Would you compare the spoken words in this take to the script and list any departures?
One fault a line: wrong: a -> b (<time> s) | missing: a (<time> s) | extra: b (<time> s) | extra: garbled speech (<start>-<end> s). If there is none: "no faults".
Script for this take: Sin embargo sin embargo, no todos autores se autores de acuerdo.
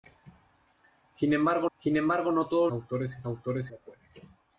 no faults